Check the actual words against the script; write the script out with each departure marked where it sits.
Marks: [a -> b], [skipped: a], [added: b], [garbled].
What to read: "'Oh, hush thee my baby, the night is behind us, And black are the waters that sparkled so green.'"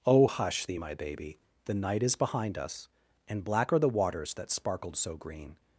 "'Oh, hush thee my baby, the night is behind us, And black are the waters that sparkled so green.'"